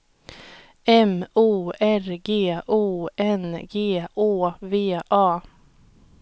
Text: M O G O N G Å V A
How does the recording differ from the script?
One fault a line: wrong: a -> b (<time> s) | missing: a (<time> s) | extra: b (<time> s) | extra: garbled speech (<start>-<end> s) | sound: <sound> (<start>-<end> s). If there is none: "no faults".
extra: R (1.8 s)